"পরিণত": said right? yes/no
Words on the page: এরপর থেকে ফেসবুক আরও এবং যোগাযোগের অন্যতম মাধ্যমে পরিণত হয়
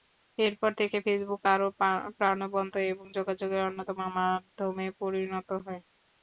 yes